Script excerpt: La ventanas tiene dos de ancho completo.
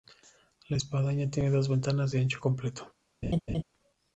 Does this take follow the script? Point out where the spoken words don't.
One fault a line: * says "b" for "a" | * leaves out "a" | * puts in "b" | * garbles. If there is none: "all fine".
* says "espadaña" for "ventanas"
* puts in "ventanas"